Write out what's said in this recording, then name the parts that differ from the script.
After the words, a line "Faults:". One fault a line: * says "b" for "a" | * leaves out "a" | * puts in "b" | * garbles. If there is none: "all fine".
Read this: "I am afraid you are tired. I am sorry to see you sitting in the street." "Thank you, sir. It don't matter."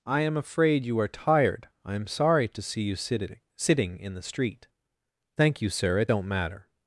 "I am afraid you are tired. I am sorry to see you sitting sitting in the street." "Thank you, sir. It don't matter."
Faults:
* puts in "sitting"